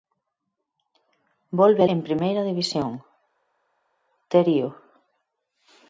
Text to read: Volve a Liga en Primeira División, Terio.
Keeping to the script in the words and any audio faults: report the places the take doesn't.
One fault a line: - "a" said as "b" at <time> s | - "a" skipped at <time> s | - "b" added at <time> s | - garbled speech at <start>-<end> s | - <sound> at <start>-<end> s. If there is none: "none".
- "Liga" skipped at 1.9 s